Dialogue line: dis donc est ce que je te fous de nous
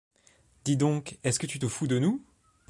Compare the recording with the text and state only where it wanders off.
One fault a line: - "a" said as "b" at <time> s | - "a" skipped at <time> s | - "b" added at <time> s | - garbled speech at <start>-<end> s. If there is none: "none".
- "je" said as "tu" at 1.4 s